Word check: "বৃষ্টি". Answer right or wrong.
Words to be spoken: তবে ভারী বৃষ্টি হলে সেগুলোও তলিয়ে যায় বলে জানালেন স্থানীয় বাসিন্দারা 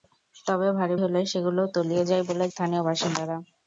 wrong